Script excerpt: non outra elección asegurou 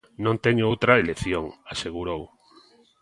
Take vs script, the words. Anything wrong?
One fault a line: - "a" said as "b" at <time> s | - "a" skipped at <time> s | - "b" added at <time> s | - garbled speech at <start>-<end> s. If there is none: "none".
- "teño" added at 0.5 s